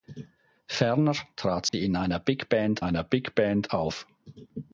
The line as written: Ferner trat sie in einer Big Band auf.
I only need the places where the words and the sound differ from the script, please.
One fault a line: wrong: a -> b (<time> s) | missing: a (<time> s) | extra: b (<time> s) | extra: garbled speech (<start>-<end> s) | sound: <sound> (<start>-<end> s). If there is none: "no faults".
sound: dropout (1.7-1.7 s)
extra: einer Big Band (2.8 s)